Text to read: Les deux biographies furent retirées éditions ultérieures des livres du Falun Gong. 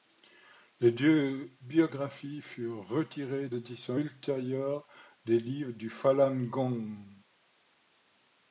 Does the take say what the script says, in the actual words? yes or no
yes